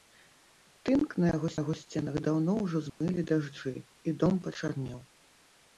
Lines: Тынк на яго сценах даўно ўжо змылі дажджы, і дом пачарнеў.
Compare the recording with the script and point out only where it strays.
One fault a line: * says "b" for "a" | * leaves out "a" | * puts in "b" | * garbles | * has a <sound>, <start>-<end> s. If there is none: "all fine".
* puts in "яго"
* has a dropout, 2.9-3.0 s